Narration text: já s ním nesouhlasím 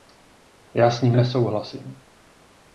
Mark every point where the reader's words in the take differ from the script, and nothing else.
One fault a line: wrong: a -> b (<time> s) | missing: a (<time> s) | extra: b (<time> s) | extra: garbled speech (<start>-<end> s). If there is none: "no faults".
no faults